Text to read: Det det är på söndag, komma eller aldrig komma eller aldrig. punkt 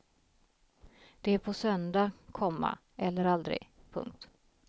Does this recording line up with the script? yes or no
no